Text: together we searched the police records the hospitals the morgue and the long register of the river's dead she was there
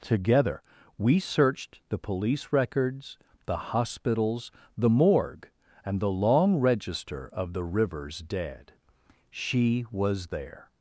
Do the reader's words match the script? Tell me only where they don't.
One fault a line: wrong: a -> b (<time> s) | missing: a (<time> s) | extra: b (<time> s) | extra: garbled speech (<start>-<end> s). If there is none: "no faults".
no faults